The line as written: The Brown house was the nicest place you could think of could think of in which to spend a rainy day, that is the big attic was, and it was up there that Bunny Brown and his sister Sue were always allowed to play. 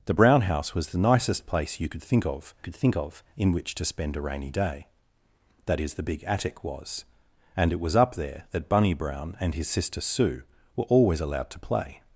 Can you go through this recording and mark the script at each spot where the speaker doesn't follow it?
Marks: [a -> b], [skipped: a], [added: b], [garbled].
The Brown house was the nicest place you could think of could think of in which to spend a rainy day, that is the big attic was, and it was up there that Bunny Brown and his sister Sue were always allowed to play.